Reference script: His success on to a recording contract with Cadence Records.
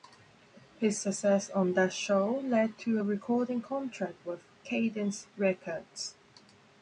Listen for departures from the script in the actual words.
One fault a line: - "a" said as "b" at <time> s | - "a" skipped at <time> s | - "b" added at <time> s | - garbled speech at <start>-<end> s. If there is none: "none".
- "that show led" added at 1.7 s